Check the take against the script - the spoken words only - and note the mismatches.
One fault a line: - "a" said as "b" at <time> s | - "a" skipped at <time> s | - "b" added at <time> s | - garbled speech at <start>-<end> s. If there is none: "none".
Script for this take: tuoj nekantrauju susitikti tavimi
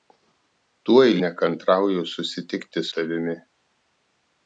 none